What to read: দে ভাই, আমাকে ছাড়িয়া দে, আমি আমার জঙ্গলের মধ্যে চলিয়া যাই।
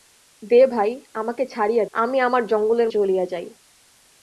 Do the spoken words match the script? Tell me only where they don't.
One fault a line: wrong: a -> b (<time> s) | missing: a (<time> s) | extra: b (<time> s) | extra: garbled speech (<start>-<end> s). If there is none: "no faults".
missing: দে (1.9 s)
missing: মধ্যে (2.9 s)